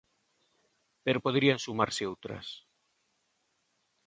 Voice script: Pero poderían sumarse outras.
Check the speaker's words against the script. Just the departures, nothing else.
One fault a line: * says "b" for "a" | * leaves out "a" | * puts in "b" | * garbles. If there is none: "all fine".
all fine